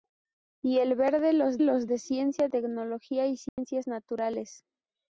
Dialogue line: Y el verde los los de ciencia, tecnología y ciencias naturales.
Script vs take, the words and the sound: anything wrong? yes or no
yes